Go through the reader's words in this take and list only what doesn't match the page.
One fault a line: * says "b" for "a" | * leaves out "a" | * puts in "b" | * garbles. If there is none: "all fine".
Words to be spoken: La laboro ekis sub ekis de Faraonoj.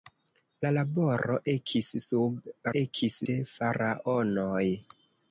all fine